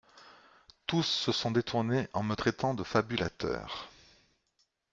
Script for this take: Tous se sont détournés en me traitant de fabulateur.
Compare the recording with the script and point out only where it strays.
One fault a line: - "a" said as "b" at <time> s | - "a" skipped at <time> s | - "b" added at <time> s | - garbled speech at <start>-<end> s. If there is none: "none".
none